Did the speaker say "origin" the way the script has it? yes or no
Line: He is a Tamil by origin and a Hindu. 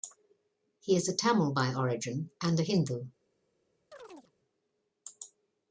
yes